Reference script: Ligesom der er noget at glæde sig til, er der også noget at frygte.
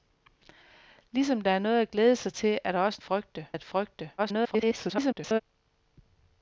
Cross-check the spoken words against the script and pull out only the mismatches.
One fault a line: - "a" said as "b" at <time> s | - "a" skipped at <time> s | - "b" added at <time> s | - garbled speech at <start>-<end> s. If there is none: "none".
- "noget" said as "frygte" at 3.0 s
- garbled speech at 4.2-5.4 s